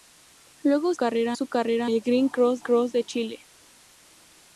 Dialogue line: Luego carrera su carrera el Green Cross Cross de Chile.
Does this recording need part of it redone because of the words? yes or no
no